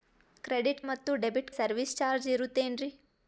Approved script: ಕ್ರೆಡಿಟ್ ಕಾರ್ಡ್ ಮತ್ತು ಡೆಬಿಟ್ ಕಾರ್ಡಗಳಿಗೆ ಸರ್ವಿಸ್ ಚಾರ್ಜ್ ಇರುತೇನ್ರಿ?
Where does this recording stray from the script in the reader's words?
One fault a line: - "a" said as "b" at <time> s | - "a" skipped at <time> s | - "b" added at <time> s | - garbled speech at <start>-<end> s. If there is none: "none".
- "ಕಾರ್ಡ್" skipped at 0.8 s
- "ಕಾರ್ಡಗಳಿಗೆ" skipped at 1.5 s